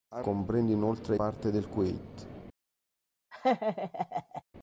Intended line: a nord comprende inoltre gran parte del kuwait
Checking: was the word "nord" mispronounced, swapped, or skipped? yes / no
yes